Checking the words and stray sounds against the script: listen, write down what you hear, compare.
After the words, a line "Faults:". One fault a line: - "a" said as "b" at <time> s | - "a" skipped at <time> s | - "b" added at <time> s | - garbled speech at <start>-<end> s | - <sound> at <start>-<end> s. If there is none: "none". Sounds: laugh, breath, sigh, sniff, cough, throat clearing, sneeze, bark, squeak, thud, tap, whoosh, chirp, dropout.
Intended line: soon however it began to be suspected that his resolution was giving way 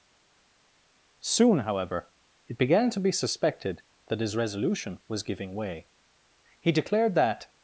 soon however it began to be suspected that his resolution was giving way he declared that
Faults:
- "he declared that" added at 6.6 s